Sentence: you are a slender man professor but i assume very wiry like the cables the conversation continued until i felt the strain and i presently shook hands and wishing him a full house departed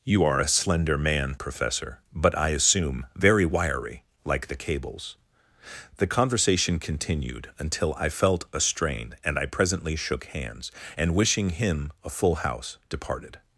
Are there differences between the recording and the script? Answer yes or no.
yes